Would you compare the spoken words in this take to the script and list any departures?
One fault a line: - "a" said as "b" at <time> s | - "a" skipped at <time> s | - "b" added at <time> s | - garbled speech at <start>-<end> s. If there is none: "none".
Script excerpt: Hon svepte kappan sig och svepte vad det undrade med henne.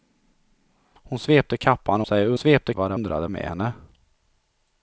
none